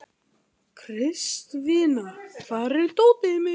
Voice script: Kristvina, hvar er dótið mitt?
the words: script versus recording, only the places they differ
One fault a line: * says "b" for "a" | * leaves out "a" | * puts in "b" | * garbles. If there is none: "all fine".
all fine